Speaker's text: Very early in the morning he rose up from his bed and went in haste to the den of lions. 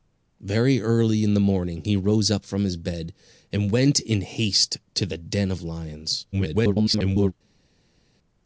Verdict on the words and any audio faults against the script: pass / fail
fail